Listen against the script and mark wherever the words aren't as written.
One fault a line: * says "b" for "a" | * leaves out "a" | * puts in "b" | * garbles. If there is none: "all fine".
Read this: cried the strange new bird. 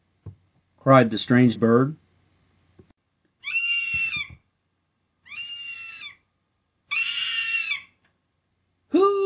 * leaves out "new"